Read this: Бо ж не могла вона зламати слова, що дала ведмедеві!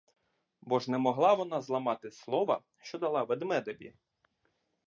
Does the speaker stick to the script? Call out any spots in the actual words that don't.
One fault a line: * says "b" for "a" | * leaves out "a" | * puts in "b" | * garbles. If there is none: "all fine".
all fine